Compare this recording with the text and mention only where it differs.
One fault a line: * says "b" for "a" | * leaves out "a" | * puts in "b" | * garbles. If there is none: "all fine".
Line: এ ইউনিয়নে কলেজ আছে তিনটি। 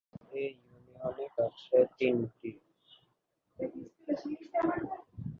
* leaves out "কলেজ"